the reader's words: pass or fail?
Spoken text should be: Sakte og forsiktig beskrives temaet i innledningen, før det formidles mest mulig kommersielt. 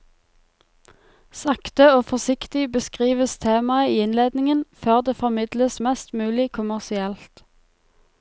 pass